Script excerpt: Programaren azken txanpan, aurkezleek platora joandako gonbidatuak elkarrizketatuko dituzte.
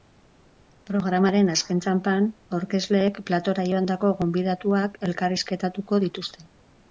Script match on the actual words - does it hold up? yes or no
yes